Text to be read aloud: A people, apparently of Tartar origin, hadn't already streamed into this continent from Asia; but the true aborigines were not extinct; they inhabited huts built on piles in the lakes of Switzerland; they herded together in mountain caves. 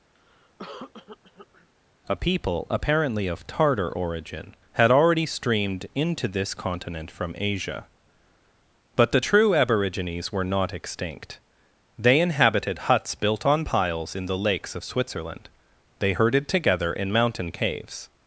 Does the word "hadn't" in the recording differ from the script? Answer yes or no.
yes